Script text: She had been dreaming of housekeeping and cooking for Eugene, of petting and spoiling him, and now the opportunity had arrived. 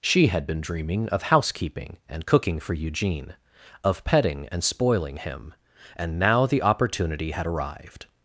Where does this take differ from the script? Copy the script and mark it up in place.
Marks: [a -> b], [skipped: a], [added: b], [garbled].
She had been dreaming of housekeeping and cooking for Eugene, of petting and spoiling him, and now the opportunity had arrived.